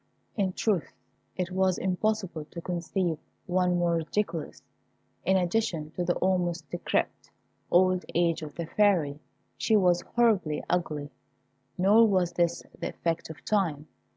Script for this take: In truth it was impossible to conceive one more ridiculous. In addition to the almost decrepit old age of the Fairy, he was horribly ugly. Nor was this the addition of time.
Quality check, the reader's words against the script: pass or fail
fail